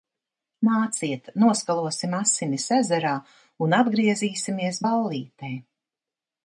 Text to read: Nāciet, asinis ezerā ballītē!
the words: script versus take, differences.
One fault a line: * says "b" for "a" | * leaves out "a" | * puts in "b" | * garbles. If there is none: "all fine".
* puts in "noskalosim"
* puts in "un atgriezīsimies"